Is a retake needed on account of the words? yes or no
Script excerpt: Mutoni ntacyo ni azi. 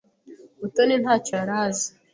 yes